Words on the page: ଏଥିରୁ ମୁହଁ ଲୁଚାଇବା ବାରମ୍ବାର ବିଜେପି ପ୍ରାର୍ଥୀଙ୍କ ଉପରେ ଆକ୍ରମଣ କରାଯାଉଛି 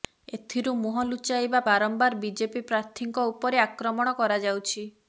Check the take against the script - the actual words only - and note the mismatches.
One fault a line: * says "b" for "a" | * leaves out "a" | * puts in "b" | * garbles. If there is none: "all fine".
all fine